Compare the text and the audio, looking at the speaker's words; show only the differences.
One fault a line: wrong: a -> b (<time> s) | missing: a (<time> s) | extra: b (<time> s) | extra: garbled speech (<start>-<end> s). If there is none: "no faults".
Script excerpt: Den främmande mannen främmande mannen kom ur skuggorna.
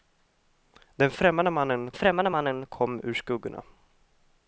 no faults